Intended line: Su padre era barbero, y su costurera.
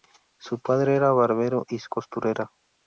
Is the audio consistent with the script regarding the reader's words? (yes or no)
yes